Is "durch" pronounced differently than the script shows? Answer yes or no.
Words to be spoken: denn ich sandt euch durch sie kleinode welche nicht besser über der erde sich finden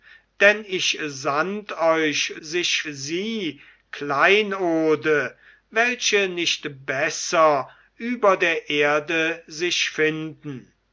yes